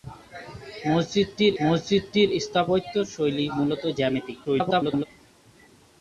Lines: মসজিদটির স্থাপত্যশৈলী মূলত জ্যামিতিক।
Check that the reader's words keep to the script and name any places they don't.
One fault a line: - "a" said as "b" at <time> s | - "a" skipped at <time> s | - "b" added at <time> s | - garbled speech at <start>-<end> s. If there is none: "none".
- "মসজিদটির" added at 1.6 s
- garbled speech at 4.4-5.1 s